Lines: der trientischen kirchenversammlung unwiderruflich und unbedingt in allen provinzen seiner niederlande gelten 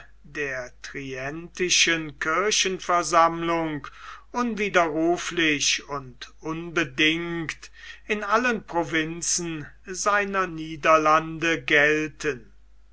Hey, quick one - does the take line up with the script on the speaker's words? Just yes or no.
yes